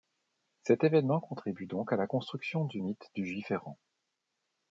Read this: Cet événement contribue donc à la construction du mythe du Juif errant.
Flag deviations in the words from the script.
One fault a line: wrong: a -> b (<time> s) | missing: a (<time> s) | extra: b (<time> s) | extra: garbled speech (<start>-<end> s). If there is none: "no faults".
no faults